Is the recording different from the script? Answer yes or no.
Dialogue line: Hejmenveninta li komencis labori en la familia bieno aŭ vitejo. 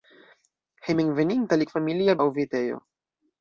yes